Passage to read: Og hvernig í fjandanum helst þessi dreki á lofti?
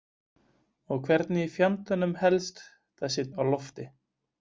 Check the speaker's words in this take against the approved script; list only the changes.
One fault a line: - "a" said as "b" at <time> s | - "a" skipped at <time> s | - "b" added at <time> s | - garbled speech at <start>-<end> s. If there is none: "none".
- "dreki" skipped at 3.3 s